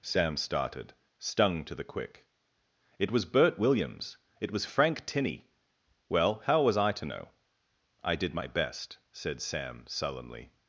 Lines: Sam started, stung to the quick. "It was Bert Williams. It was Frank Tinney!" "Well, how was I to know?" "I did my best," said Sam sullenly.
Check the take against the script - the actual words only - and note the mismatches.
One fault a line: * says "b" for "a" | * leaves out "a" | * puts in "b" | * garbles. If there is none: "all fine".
all fine